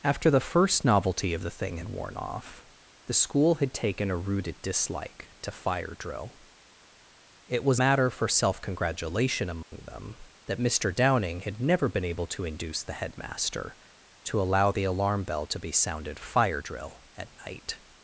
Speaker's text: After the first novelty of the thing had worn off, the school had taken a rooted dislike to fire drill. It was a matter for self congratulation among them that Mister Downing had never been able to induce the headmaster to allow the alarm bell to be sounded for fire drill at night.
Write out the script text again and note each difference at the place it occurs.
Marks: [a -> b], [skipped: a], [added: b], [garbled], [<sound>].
After the first novelty of the thing had worn off, the school had taken a rooted dislike to fire drill. It was [skipped: a] matter for self congratulation among [dropout] them that Mister Downing had never been able to induce the headmaster to allow the alarm bell to be sounded [skipped: for] fire drill at night.